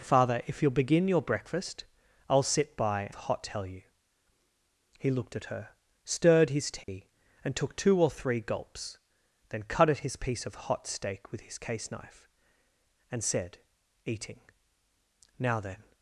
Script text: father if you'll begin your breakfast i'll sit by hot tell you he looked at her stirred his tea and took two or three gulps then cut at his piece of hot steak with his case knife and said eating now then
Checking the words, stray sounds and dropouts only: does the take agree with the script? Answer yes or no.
no